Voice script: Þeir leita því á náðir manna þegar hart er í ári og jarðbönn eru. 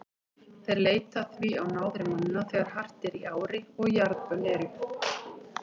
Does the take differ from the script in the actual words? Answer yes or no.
no